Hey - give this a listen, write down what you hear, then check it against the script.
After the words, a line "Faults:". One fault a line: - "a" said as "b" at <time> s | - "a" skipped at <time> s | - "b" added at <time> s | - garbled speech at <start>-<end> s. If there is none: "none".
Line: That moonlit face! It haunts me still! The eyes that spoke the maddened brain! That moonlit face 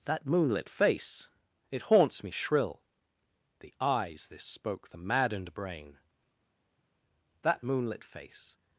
That moonlit face! It haunts me shrill! The eyes this spoke the maddened brain! That moonlit face
Faults:
- "still" said as "shrill" at 2.3 s
- "that" said as "this" at 4.3 s